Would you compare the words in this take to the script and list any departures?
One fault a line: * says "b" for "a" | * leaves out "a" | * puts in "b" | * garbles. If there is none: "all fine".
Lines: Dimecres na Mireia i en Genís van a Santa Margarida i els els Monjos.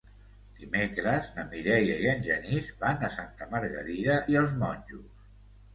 * leaves out "els"